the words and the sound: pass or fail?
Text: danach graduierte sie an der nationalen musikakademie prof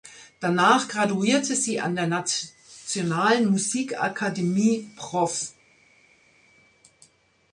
pass